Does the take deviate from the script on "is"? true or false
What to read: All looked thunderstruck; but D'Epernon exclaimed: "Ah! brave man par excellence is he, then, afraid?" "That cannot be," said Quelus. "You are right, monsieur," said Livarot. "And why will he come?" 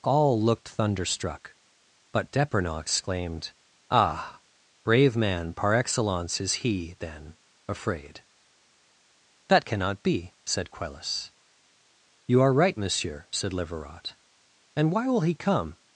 false